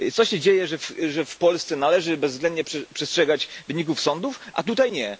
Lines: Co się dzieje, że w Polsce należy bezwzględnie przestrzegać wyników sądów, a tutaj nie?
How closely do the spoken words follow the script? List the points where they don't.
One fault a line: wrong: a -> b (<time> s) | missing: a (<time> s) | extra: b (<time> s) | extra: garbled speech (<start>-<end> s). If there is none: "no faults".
no faults